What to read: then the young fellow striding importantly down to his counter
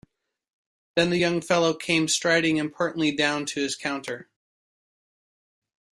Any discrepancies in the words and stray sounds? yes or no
yes